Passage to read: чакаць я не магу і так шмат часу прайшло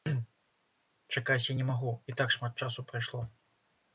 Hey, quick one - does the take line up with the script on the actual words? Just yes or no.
yes